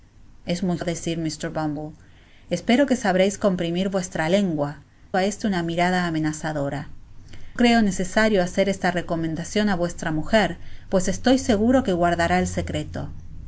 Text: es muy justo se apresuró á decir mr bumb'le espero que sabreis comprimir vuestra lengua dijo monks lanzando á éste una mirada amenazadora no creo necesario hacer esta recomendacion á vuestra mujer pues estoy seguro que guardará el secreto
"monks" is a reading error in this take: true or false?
true